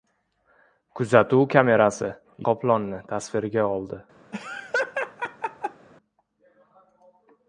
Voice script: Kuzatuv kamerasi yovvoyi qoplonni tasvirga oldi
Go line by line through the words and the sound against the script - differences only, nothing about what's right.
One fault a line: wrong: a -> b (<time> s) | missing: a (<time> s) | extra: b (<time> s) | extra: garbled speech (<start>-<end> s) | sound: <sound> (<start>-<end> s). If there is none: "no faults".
missing: yovvoyi (2.1 s)
sound: laugh (4.3-5.9 s)